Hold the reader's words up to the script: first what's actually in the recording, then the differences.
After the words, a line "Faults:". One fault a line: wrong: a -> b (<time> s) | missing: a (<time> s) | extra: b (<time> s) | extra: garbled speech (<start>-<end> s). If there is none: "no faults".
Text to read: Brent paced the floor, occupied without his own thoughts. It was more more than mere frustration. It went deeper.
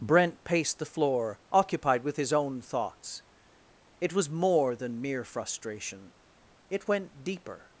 Brent paced the floor, occupied with his own thoughts. It was more than mere frustration. It went deeper.
Faults:
wrong: without -> with (2.0 s)
missing: more (4.8 s)